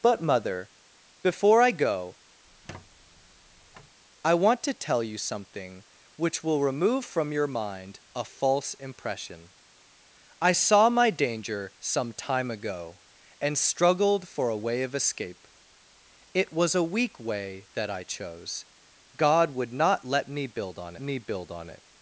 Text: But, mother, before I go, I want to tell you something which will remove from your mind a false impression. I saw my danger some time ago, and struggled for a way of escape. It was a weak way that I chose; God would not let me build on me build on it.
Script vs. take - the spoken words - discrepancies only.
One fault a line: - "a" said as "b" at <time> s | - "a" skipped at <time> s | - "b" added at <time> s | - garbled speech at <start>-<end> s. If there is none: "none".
none